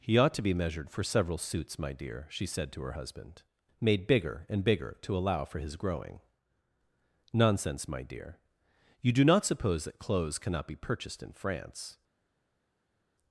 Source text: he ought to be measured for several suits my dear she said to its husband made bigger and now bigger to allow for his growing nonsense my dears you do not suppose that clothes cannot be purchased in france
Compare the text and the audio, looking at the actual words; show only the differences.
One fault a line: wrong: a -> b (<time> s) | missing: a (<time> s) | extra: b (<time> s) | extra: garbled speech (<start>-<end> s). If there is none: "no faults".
wrong: its -> her (2.8 s)
missing: now (4.6 s)
wrong: dears -> dear (8.0 s)